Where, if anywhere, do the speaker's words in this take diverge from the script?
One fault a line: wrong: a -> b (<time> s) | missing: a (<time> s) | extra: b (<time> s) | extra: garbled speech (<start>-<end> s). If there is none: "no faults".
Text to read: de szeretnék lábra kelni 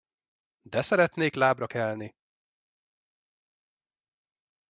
no faults